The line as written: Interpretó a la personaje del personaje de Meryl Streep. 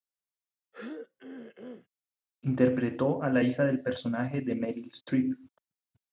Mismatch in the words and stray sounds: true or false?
true